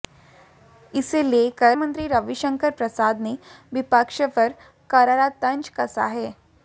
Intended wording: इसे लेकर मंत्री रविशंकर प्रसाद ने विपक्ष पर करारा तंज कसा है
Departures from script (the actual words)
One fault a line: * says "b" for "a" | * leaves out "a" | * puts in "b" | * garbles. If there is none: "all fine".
all fine